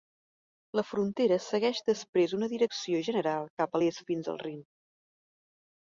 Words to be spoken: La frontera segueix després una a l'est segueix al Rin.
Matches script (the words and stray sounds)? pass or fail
fail